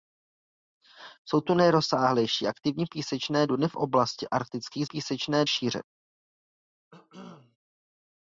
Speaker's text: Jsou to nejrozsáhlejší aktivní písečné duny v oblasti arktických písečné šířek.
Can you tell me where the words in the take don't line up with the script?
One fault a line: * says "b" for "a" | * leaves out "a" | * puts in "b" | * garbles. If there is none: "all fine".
all fine